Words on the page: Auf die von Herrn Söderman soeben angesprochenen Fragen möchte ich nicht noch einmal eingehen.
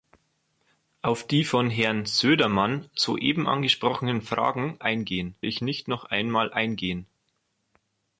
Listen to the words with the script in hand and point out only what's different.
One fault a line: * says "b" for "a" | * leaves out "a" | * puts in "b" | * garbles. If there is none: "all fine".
* says "eingehen" for "möchte"